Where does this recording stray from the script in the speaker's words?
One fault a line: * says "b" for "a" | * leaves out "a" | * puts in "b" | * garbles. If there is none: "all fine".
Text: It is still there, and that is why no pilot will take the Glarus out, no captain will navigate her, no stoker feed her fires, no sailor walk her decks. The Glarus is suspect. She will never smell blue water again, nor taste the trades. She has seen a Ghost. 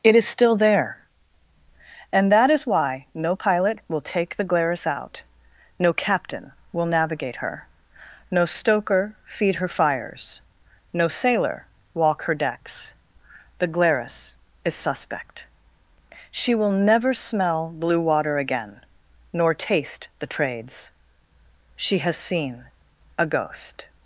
all fine